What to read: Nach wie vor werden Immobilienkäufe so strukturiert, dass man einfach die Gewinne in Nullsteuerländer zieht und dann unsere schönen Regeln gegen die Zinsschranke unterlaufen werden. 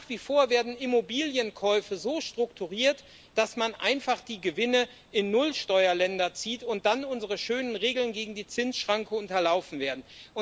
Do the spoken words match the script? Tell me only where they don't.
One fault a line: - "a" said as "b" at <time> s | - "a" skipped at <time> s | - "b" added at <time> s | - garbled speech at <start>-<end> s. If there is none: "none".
none